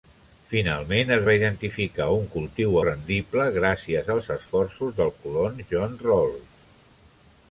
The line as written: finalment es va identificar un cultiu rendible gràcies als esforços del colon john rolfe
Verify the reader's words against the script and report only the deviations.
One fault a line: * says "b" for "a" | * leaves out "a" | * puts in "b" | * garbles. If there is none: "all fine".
all fine